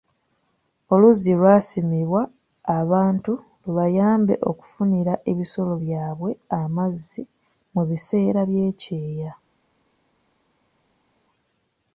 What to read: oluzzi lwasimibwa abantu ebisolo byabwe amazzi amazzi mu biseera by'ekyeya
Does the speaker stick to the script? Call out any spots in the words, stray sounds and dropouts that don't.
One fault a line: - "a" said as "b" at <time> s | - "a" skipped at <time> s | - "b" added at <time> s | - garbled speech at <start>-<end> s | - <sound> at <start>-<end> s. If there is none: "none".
- "lubayambe okufunira" added at 3.6 s
- "amazzi" skipped at 7.2 s